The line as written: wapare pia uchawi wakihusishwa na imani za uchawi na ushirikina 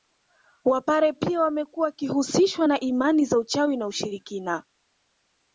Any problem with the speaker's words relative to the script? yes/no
yes